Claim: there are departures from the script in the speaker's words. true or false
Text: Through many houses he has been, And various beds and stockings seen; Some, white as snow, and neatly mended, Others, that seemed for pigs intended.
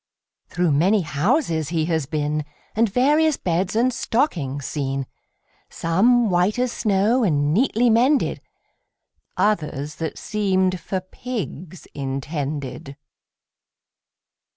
false